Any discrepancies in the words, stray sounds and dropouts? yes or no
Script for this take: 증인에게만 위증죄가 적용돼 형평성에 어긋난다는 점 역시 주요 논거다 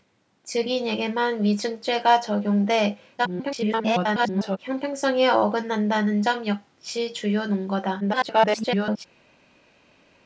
yes